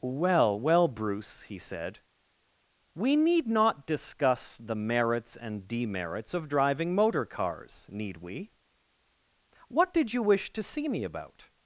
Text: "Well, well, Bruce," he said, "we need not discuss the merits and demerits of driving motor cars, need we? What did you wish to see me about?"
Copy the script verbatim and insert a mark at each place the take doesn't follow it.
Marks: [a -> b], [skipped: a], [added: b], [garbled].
"Well, well, Bruce," he said, "we need not discuss the merits and demerits of driving motor cars, need we? What did you wish to see me about?"